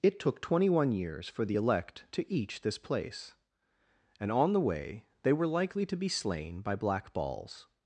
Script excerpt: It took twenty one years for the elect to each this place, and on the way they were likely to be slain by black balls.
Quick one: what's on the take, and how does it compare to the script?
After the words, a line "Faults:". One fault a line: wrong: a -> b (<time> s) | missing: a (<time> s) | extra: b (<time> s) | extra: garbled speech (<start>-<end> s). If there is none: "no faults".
It took twenty one years for the elect to each this place, and on the way they were likely to be slain by black balls.
Faults:
no faults